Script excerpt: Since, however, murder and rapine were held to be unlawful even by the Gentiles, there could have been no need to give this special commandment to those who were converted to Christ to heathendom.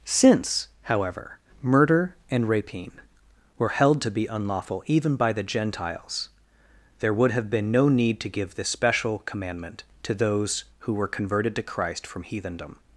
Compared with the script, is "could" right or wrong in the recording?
wrong